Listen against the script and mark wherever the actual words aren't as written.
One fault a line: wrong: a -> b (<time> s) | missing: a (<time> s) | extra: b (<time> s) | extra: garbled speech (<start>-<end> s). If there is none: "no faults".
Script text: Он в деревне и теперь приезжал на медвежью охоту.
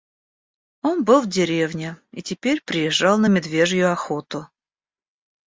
extra: был (1.0 s)